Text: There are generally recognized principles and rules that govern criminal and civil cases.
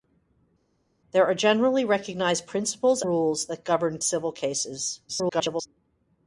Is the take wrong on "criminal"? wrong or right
wrong